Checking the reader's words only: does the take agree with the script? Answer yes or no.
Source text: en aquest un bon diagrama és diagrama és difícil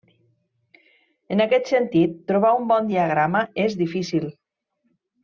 no